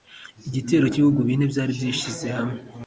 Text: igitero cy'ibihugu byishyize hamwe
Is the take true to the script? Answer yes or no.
no